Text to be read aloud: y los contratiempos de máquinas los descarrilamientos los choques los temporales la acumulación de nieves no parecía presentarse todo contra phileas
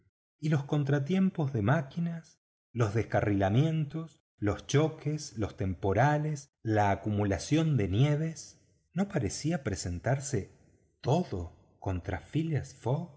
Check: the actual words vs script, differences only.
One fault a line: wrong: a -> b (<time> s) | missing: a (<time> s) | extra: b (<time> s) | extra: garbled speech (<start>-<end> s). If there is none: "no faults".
no faults